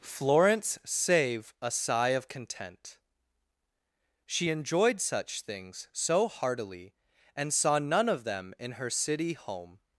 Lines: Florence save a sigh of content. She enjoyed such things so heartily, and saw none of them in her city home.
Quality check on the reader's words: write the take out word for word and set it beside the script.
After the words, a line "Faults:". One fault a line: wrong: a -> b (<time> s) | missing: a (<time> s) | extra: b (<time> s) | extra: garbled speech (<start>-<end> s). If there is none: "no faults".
Florence save a sigh of content. She enjoyed such things so heartily, and saw none of them in her city home.
Faults:
no faults